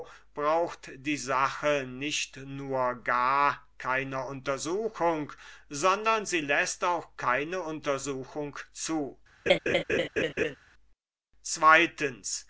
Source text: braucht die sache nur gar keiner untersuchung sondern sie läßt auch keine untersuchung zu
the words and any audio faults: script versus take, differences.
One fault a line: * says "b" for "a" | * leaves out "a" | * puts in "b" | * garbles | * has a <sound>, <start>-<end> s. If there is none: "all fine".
* puts in "nicht"
* has a laugh, 9.5-10.6 s